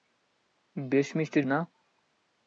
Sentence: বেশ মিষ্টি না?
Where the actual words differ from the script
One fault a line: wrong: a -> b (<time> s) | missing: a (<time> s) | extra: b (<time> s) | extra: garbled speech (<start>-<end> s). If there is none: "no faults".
no faults